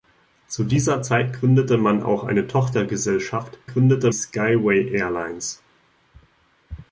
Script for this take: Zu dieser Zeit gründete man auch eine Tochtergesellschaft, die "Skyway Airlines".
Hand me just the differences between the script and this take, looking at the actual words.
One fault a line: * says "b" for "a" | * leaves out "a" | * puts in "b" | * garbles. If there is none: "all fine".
* says "gründete" for "die"